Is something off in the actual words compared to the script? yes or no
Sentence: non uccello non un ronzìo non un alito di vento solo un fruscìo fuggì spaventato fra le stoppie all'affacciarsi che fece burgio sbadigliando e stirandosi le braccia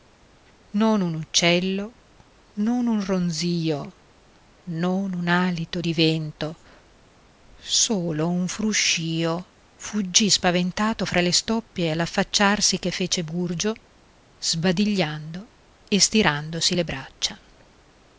yes